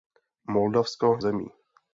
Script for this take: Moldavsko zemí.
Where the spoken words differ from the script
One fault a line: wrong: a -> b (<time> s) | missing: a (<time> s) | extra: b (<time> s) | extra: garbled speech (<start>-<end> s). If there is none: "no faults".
no faults